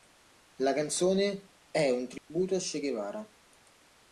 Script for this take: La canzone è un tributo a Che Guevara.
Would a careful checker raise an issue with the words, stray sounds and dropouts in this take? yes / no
yes